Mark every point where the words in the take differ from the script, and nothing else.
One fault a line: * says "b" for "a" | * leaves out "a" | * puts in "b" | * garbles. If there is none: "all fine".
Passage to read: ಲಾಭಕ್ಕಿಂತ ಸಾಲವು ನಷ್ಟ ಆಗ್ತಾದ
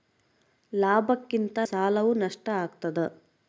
all fine